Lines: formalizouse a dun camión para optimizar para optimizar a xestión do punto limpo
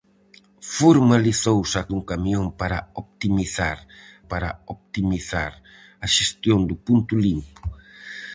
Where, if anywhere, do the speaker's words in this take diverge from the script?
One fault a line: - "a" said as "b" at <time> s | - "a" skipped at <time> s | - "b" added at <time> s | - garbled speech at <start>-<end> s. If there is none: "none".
none